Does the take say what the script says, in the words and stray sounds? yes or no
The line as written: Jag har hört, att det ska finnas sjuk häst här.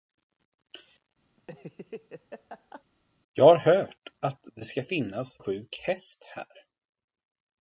no